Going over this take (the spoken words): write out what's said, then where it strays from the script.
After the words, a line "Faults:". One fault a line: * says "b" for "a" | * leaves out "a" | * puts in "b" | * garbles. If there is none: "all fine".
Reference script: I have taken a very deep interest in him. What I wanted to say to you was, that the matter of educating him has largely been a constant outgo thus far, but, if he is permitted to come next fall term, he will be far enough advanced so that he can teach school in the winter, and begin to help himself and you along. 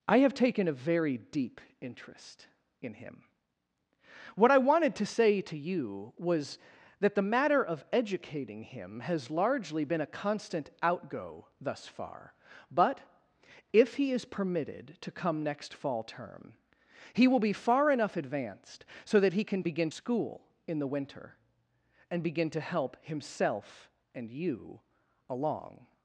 I have taken a very deep interest in him. What I wanted to say to you was, that the matter of educating him has largely been a constant outgo thus far, but, if he is permitted to come next fall term, he will be far enough advanced so that he can begin school in the winter, and begin to help himself and you along.
Faults:
* says "begin" for "teach"